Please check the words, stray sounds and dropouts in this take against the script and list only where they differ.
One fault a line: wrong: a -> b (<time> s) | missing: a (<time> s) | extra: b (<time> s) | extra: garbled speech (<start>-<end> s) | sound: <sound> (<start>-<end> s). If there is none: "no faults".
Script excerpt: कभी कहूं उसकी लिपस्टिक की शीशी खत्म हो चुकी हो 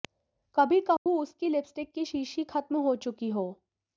sound: dropout (1.0-1.1 s)